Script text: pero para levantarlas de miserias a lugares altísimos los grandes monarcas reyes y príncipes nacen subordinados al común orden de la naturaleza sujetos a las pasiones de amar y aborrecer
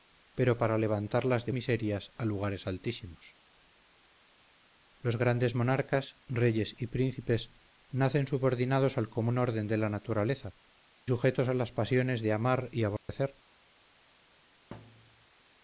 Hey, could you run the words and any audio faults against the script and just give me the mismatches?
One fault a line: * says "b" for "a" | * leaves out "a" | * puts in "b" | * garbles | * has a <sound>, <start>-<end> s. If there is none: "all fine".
* has a dropout, 13.0-13.1 s
* has a thud, 14.7-15.3 s